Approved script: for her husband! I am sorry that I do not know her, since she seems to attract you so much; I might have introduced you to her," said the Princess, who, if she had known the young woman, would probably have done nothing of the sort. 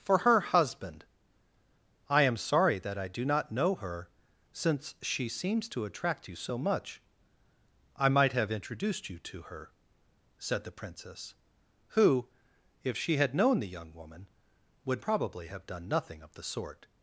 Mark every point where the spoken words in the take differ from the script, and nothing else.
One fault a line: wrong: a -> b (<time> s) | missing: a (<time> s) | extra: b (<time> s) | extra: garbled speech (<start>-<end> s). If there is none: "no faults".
no faults